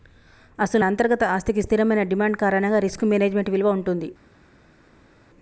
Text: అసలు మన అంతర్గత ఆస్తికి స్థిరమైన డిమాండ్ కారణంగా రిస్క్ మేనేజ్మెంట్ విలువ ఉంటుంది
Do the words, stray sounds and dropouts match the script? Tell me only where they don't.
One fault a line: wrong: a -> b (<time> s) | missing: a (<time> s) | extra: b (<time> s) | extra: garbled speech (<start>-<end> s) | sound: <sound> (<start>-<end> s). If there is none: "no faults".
missing: మన (0.8 s)